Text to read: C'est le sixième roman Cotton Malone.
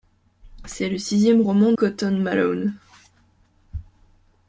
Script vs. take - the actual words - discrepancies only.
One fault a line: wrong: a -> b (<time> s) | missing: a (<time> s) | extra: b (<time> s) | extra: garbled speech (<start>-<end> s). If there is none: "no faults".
no faults